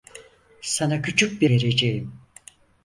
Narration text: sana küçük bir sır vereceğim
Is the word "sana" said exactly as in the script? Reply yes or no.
yes